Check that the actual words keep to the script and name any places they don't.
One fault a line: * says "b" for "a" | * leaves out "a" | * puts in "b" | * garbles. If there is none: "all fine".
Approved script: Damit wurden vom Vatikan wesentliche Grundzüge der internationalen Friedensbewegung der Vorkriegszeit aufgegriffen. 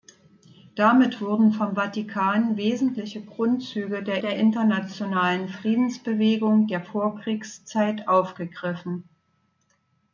* puts in "der"